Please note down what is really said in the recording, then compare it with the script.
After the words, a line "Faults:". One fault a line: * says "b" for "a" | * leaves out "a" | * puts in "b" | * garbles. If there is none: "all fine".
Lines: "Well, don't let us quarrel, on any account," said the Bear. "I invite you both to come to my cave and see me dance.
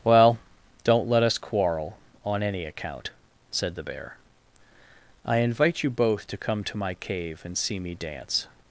"Well, don't let us quarrel, on any account," said the Bear. "I invite you both to come to my cave and see me dance.
Faults:
all fine